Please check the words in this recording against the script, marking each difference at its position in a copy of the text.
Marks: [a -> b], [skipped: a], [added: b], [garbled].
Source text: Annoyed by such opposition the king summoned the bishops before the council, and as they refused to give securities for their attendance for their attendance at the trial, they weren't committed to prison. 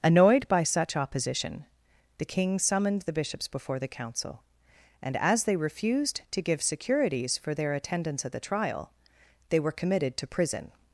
Annoyed by such opposition the king summoned the bishops before the council, and as they refused to give securities for their attendance [skipped: for their attendance] at the trial, they [weren't -> were] committed to prison.